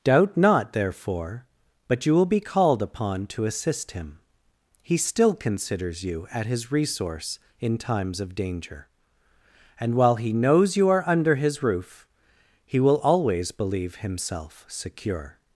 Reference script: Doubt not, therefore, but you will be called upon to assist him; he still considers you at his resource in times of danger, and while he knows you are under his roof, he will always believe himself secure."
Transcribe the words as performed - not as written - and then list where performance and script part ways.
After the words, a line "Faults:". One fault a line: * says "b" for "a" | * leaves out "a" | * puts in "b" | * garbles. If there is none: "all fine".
Doubt not, therefore, but you will be called upon to assist him; he still considers you at his resource in times of danger, and while he knows you are under his roof, he will always believe himself secure."
Faults:
all fine